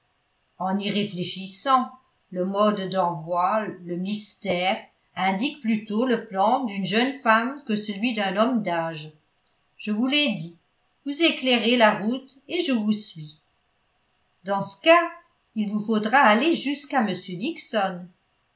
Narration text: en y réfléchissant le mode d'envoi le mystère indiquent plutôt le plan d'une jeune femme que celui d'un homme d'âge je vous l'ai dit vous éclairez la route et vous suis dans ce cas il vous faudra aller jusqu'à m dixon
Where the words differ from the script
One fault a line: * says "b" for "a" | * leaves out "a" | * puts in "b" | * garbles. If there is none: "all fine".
* puts in "je"